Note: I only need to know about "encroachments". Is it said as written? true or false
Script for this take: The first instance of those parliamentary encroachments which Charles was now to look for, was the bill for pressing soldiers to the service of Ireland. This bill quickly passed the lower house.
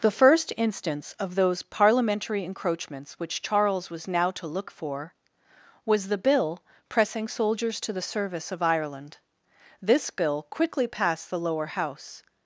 true